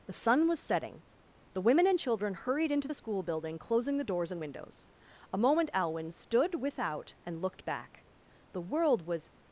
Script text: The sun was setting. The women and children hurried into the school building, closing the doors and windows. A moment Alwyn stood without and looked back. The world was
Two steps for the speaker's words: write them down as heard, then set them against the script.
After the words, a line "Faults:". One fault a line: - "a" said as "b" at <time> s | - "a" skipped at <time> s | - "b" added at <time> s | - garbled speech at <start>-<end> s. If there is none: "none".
The sun was setting. The women and children hurried into the school building, closing the doors and windows. A moment Alwyn stood without and looked back. The world was
Faults:
none